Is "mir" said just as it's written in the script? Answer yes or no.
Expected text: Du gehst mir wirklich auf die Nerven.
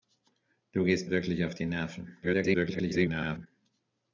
no